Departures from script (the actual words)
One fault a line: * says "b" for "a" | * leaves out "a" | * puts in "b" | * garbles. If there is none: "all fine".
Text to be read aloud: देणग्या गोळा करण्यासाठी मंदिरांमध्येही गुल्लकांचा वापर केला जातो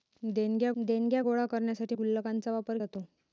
* puts in "देणग्या"
* leaves out "मंदिरांमध्येही"
* leaves out "केला"